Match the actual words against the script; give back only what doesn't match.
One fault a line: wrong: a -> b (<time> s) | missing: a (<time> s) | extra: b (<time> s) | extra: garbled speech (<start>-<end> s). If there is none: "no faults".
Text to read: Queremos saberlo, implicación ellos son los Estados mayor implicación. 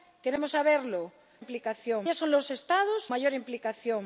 no faults